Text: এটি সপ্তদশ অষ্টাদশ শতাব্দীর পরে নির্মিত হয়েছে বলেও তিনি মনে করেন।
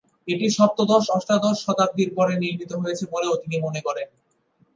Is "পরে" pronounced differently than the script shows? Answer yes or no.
no